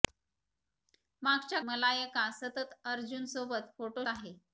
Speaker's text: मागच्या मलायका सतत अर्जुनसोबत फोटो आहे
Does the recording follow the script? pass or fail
pass